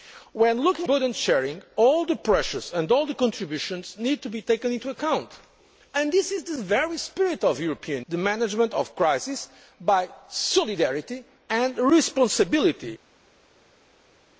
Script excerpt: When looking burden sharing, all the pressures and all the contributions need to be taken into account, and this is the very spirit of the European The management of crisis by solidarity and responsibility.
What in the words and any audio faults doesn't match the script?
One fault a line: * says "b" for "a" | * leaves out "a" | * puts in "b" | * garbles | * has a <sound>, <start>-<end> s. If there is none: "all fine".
all fine